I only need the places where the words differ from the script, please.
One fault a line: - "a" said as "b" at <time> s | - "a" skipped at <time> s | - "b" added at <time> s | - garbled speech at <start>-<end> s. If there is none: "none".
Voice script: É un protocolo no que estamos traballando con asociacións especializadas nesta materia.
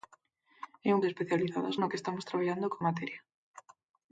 - "protocolo" said as "especializadas" at 1.1 s
- "asociacións especializadas nesta" skipped at 2.8 s